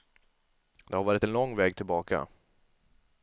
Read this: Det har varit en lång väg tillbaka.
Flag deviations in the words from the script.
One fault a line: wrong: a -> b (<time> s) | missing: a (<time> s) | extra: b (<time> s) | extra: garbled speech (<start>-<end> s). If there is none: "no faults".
no faults